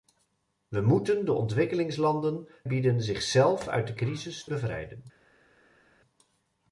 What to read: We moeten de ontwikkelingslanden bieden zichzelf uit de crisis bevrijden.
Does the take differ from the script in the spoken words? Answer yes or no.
no